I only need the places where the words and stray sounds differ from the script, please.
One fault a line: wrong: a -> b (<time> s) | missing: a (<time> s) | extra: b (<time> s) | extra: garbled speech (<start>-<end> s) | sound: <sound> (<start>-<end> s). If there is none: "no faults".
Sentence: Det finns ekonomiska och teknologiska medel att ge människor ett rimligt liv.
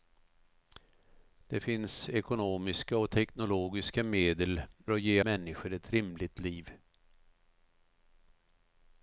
no faults